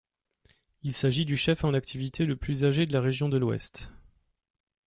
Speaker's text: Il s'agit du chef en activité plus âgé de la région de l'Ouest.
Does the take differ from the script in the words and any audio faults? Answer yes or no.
yes